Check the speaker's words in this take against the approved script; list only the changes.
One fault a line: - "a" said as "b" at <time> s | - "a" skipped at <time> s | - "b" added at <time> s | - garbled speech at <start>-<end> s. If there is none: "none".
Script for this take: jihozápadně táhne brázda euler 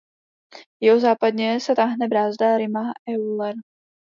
- "se" added at 1.6 s
- "rima" added at 2.5 s